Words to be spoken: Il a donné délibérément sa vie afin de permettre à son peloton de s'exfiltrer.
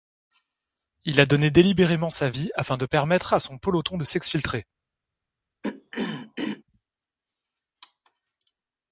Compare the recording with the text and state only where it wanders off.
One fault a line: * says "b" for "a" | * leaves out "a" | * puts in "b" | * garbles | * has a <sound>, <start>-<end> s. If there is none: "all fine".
* has a throat clearing, 5.6-6.6 s